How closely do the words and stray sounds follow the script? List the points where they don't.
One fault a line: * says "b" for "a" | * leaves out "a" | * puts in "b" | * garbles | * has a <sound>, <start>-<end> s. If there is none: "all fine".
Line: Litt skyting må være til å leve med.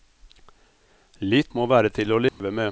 * leaves out "skyting"
* has a dropout, 2.3-2.4 s